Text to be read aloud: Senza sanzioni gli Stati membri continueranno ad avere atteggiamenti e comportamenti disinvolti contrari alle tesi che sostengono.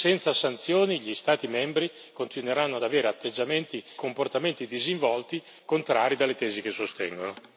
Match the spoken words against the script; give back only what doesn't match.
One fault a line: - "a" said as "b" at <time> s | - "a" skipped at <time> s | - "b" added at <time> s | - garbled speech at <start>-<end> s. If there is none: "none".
- "e" skipped at 3.8 s